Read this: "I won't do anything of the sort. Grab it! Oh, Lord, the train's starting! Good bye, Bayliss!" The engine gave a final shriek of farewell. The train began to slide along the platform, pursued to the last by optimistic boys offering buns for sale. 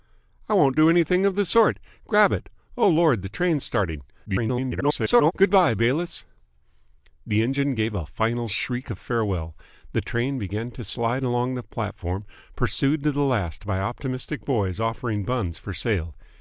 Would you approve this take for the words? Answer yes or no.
no